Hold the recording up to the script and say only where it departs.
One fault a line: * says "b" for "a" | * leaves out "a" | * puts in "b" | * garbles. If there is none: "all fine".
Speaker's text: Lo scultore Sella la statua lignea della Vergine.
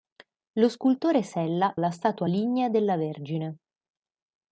all fine